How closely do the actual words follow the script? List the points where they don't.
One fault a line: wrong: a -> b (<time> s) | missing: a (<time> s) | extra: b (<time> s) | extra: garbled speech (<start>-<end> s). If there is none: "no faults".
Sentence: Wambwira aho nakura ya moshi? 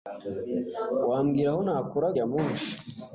no faults